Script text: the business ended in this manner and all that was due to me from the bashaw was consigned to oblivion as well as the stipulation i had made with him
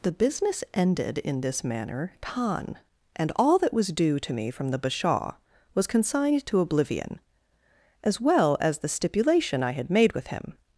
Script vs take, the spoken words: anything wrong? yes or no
yes